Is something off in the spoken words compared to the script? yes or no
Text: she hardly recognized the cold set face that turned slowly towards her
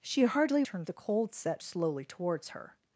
yes